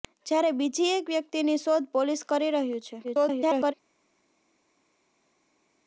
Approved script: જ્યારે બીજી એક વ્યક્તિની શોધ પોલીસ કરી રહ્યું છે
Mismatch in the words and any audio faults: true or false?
true